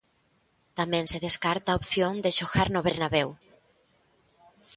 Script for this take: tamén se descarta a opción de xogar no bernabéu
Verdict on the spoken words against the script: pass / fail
pass